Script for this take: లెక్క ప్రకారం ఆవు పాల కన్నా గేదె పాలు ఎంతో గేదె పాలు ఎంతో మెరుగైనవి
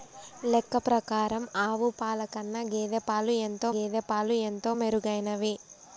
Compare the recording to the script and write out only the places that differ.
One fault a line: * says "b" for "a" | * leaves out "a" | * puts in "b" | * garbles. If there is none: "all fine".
all fine